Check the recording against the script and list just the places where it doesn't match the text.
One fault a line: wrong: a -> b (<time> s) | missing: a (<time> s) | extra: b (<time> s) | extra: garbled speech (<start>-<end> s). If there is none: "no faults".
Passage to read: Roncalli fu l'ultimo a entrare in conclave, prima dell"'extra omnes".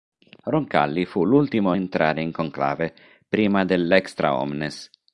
no faults